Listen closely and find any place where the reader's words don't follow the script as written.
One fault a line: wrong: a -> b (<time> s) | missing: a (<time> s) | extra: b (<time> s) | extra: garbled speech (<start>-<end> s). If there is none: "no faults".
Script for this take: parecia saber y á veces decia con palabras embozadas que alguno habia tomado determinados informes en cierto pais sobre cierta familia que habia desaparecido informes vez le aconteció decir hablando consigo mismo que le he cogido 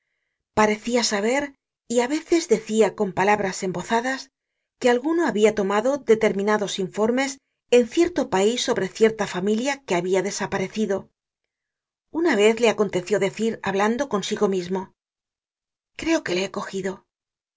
wrong: informes -> una (12.2 s)
extra: creo (16.0 s)